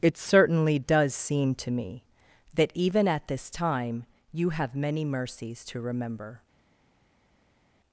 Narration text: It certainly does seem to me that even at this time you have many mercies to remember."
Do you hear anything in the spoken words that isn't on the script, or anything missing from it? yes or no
no